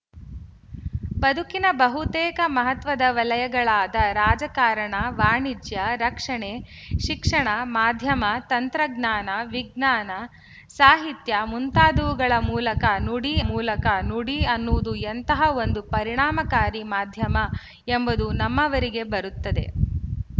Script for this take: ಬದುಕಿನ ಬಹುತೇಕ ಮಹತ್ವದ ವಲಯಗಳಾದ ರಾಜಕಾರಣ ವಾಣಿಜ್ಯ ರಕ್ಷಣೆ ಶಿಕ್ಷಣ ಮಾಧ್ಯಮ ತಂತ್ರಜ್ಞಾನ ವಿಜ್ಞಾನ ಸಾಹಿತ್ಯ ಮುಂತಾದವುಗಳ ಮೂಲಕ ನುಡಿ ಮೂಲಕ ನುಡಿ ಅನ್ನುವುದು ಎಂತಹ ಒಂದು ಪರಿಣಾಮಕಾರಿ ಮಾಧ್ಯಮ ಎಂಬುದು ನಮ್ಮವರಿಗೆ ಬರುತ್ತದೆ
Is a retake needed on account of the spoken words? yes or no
no